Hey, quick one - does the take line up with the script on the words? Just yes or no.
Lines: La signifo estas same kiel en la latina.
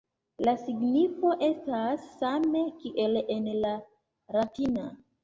yes